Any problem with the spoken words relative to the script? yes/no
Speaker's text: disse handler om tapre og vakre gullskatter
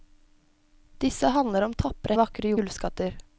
no